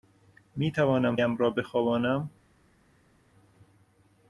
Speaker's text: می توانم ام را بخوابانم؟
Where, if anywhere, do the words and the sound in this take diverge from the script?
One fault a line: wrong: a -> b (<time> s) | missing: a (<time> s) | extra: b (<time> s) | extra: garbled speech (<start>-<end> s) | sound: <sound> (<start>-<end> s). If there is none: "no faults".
no faults